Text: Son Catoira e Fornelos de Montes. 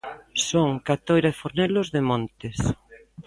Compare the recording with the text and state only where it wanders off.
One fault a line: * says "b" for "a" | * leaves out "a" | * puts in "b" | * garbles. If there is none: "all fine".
all fine